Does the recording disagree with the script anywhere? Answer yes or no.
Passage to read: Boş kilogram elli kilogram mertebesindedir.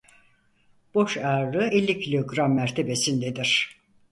yes